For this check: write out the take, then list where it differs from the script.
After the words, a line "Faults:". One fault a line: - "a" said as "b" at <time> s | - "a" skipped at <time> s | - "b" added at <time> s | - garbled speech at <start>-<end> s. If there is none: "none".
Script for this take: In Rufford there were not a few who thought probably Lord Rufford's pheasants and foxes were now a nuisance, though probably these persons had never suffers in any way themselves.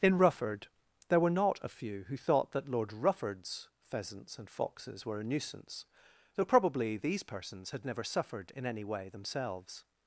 In Rufford there were not a few who thought that Lord Rufford's pheasants and foxes were a nuisance, though probably these persons had never suffered in any way themselves.
Faults:
- "probably" said as "that" at 2.5 s
- "now" skipped at 5.2 s
- "suffers" said as "suffered" at 8.0 s